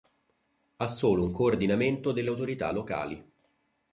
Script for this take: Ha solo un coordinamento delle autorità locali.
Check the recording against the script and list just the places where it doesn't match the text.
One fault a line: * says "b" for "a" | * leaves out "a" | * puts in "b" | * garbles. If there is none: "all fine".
all fine